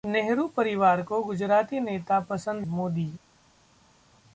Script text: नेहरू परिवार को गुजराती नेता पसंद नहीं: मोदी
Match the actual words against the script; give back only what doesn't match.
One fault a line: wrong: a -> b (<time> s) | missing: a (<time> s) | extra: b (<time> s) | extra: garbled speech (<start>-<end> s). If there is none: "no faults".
missing: नहीं (2.6 s)